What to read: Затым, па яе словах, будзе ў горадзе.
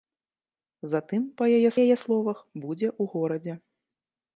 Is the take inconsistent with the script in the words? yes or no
yes